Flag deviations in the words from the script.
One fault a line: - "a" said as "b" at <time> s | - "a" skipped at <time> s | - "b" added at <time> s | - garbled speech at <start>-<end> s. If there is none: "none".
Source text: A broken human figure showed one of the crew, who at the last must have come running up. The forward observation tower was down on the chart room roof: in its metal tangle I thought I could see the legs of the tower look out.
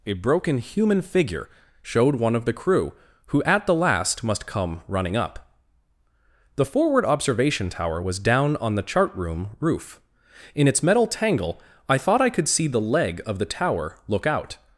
- "have" skipped at 4.5 s
- "legs" said as "leg" at 12.8 s